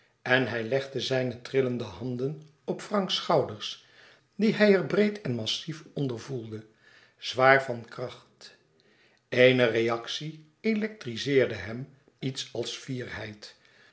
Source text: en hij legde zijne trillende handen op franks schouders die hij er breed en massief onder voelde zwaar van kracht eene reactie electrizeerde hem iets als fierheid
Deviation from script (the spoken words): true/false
false